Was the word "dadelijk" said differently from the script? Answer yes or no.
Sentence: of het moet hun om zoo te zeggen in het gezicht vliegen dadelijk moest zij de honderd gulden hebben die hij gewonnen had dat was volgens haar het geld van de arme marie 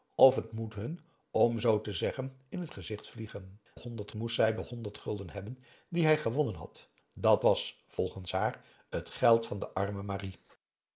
yes